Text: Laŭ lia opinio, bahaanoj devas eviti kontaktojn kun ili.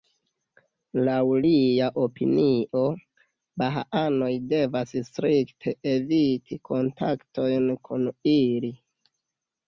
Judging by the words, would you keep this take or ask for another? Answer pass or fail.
fail